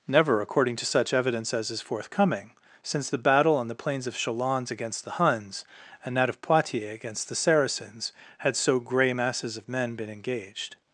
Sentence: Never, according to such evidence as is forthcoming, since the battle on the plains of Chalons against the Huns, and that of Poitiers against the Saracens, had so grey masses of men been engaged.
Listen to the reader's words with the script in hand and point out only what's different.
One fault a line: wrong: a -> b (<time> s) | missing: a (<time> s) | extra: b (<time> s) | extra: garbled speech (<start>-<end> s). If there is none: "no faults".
no faults